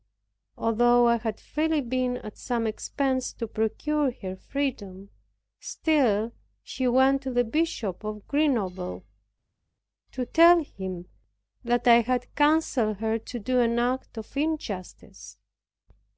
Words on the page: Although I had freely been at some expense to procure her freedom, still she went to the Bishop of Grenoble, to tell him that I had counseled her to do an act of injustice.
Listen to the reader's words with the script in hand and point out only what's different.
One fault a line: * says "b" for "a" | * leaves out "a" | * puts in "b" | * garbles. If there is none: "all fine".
all fine